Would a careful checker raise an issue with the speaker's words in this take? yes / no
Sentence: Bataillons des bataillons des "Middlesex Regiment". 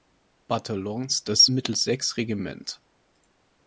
yes